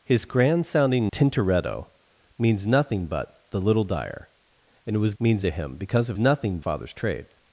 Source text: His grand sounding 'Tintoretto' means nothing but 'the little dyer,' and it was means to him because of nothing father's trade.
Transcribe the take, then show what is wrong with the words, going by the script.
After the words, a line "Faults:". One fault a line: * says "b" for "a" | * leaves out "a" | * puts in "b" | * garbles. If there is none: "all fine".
His grand sounding 'Tintoretto' means nothing but 'the little dyer,' and it was means to him because of nothing father's trade.
Faults:
all fine